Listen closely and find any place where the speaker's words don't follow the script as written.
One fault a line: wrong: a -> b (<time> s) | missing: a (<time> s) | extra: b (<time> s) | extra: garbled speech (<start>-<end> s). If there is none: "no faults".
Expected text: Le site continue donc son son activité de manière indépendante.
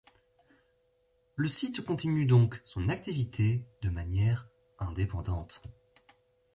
missing: son (2.9 s)